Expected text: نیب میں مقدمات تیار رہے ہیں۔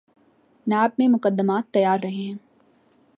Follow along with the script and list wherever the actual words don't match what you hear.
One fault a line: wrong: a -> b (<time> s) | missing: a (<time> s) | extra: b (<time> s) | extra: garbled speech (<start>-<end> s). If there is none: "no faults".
no faults